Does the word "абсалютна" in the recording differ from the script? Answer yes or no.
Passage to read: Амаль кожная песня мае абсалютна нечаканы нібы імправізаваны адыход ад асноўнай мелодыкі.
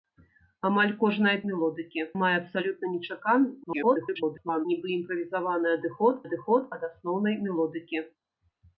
no